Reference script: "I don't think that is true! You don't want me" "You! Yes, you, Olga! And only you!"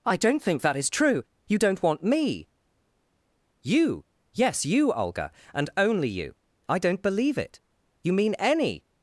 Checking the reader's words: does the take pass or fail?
fail